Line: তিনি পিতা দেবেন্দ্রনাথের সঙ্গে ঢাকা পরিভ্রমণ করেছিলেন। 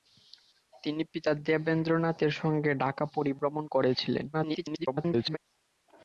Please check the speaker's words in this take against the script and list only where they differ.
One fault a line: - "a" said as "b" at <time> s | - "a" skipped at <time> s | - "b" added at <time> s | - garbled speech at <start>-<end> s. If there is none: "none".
- garbled speech at 4.3-5.4 s